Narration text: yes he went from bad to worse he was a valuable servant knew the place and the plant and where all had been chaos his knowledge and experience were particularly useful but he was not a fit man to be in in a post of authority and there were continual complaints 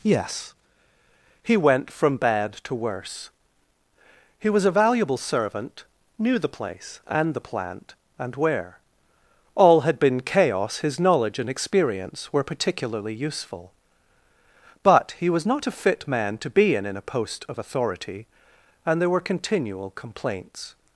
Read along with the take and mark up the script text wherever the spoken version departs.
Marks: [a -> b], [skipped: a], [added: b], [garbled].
yes he went from bad to worse he was a valuable servant knew the place and the plant and where all had been chaos his knowledge and experience were particularly useful but he was not a fit man to be in in a post of authority and there were continual complaints